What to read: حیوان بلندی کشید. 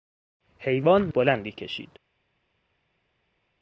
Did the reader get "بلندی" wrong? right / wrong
right